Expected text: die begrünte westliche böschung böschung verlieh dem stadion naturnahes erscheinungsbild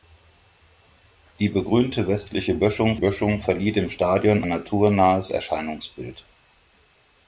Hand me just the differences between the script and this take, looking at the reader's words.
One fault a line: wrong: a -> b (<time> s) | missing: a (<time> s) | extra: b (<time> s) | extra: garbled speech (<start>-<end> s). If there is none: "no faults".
no faults